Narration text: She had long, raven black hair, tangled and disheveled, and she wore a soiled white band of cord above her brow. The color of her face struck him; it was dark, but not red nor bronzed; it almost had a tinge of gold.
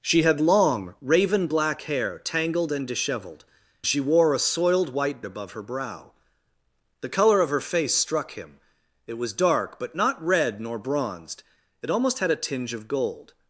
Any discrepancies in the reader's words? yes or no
yes